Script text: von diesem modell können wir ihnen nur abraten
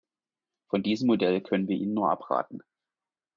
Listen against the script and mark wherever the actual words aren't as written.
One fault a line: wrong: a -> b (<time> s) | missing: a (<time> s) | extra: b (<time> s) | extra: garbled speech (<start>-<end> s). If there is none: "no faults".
no faults